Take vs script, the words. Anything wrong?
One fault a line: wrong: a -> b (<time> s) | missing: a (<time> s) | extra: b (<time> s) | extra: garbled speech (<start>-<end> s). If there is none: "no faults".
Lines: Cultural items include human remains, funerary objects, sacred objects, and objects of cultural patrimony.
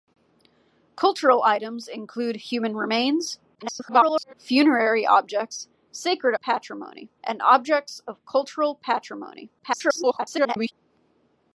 extra: garbled speech (3.5-4.3 s)
wrong: objects -> patrimony (6.3 s)
extra: garbled speech (9.6-10.7 s)